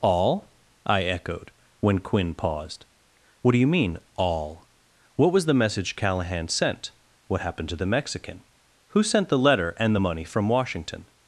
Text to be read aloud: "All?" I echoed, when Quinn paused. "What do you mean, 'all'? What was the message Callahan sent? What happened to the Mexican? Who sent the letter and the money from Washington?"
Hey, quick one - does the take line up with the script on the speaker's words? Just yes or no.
yes